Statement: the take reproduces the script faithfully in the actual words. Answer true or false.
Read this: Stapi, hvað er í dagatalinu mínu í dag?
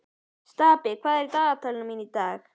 true